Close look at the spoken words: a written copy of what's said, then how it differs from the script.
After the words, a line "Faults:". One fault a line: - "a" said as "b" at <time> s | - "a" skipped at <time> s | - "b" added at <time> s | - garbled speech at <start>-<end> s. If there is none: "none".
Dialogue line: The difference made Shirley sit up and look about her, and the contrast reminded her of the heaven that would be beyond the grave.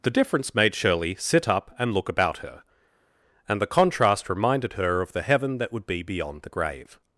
The difference made Shirley sit up and look about her, and the contrast reminded her of the heaven that would be beyond the grave.
Faults:
none